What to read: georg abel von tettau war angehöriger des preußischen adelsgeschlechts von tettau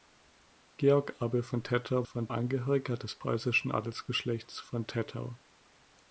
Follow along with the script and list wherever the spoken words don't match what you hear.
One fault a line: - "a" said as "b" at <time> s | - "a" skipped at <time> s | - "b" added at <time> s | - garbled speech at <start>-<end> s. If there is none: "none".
- "war" said as "von" at 2.0 s